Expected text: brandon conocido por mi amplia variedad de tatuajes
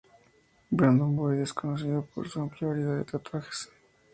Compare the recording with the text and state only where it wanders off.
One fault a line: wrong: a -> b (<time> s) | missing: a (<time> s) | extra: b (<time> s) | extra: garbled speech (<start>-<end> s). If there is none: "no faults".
extra: boyd es (1.1 s)
wrong: mi -> su (2.3 s)